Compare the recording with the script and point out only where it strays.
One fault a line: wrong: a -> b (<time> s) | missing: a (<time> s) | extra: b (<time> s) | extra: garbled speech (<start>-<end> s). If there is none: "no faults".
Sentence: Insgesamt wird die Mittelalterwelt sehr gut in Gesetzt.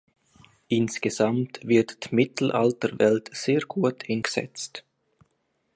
no faults